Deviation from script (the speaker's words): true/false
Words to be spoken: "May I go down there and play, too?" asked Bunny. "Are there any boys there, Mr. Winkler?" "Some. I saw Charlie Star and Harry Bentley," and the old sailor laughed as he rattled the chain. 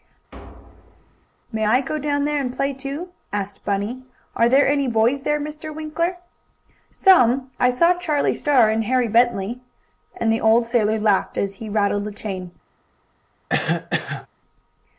false